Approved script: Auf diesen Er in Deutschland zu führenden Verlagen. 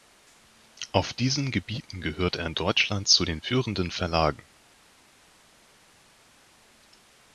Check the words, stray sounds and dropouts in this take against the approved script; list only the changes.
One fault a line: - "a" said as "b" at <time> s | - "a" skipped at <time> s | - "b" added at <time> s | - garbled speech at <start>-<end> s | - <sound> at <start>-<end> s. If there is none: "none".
- "Gebieten gehört" added at 1.5 s
- "den" added at 3.2 s